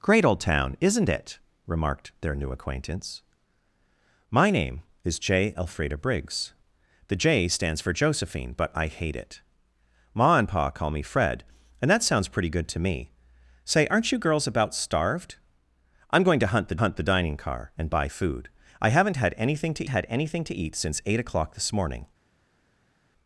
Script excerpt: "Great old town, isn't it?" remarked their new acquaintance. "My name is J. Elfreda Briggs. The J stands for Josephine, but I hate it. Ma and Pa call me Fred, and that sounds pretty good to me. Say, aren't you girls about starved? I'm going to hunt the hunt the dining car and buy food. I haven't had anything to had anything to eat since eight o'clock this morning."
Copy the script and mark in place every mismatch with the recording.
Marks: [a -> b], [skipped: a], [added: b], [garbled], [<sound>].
"Great old town, isn't it?" remarked their new acquaintance. "My name is J. Elfreda Briggs. The J stands for Josephine, but I hate it. Ma and Pa call me Fred, and that sounds pretty good to me. Say, aren't you girls about starved? I'm going to hunt the hunt the dining car and buy food. I haven't had anything to had anything to eat since eight o'clock this morning."